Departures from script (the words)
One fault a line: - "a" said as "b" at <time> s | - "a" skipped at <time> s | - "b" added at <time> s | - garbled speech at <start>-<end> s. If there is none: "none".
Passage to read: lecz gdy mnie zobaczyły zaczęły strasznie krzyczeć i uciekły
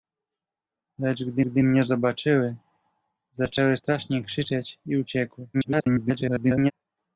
- "gdy" added at 1.4 s
- garbled speech at 5.5-6.7 s